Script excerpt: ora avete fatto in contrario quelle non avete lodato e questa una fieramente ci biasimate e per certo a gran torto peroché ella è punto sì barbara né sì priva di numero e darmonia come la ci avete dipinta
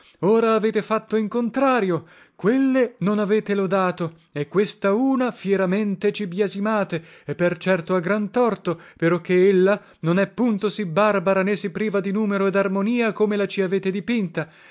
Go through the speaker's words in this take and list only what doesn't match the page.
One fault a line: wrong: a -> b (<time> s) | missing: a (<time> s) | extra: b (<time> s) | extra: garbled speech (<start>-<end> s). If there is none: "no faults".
extra: non (10.0 s)